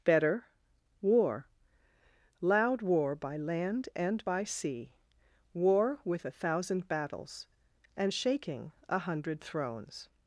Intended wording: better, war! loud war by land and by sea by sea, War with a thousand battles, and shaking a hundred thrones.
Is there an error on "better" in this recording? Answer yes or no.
no